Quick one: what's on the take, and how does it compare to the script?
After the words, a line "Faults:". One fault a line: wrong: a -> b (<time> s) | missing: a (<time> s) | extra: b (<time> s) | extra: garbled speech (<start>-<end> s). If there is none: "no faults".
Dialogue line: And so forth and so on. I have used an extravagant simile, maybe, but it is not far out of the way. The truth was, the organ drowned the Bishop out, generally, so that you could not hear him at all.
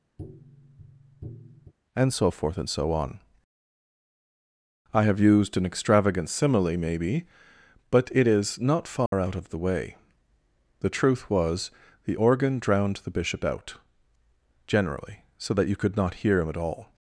And so forth and so on. I have used an extravagant simile, maybe, but it is not far out of the way. The truth was, the organ drowned the Bishop out, generally, so that you could not hear him at all.
Faults:
no faults